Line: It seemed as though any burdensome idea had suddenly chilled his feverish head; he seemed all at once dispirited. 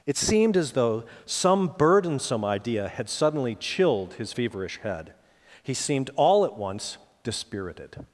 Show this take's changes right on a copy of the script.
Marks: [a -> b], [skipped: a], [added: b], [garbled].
It seemed as though [any -> some] burdensome idea had suddenly chilled his feverish head; he seemed all at once dispirited.